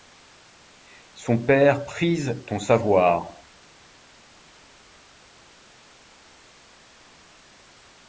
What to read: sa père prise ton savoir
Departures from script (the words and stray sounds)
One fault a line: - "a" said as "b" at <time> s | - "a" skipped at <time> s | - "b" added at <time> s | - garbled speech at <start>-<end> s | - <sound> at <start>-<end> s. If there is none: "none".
- "sa" said as "son" at 1.1 s